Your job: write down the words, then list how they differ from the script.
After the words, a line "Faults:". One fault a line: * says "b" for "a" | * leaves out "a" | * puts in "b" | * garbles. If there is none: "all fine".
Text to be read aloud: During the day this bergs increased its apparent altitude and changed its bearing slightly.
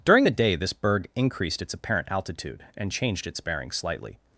During the day this berg increased its apparent altitude and changed its bearing slightly.
Faults:
* says "berg" for "bergs"